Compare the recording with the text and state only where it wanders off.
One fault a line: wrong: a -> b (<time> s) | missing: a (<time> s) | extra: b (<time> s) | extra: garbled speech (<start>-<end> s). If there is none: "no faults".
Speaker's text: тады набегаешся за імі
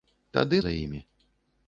missing: набегаешся (0.6 s)